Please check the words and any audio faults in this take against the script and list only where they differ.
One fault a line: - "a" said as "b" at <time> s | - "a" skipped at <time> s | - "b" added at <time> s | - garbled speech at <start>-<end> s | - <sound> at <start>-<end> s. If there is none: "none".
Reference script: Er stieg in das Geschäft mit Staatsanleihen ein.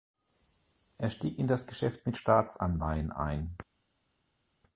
none